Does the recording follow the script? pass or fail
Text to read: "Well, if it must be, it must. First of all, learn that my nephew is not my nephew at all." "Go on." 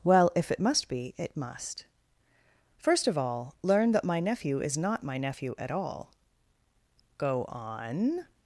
pass